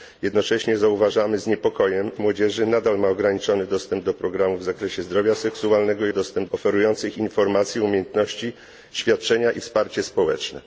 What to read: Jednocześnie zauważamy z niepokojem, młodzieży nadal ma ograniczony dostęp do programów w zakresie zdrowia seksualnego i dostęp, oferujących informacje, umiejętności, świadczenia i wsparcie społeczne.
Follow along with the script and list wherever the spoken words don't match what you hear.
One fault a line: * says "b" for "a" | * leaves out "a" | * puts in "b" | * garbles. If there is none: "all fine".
all fine